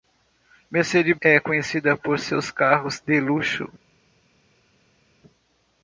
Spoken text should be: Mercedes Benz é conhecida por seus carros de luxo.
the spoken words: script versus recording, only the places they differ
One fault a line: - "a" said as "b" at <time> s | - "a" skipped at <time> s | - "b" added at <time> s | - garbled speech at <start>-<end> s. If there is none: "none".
- "Benz" skipped at 1.1 s